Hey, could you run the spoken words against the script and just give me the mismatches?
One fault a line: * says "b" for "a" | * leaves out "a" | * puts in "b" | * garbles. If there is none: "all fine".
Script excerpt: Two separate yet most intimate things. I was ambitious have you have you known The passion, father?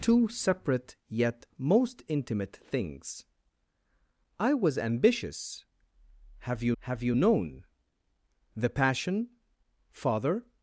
all fine